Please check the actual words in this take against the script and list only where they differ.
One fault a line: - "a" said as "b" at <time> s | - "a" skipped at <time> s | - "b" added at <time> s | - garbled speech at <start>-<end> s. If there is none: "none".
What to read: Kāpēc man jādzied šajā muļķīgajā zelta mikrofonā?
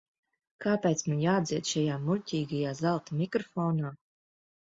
none